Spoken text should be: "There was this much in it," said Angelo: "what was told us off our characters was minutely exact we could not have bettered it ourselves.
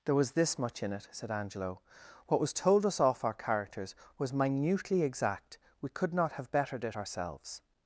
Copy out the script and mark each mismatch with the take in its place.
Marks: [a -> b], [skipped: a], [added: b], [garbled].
"There was this much in it," said Angelo: "what was told us off our characters was minutely exact we could not have bettered it ourselves.